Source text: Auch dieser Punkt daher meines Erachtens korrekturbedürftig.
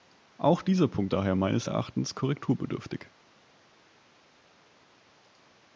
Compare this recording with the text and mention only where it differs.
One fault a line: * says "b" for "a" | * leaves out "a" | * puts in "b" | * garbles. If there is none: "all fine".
all fine